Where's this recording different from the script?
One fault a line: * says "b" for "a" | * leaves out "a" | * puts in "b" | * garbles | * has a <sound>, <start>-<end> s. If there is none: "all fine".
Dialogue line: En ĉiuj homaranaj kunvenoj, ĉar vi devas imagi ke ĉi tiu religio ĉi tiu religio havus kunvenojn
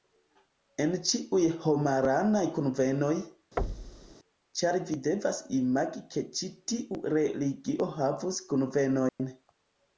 * has a thud, 3.6-4.2 s
* leaves out "ĉi tiu religio"
* has a dropout, 9.1-9.2 s